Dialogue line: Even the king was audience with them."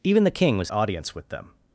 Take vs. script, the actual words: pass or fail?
pass